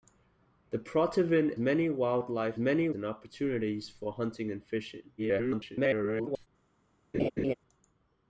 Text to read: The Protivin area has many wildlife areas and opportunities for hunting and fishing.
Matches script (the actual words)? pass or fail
fail